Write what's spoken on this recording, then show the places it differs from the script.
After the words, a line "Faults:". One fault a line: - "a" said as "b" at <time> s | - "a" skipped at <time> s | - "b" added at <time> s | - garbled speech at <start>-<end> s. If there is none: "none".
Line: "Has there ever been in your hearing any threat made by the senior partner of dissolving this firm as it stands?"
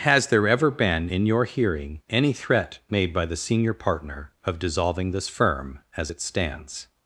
"Has there ever been in your hearing any threat made by the senior partner of dissolving this firm as it stands?"
Faults:
none